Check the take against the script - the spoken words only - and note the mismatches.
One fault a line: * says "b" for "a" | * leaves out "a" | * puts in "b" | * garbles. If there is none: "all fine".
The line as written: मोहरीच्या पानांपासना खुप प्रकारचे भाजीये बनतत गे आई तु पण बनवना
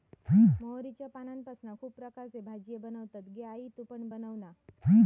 all fine